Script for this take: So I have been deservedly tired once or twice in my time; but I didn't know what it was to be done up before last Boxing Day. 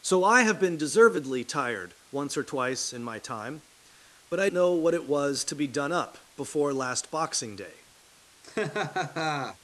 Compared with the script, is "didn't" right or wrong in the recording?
wrong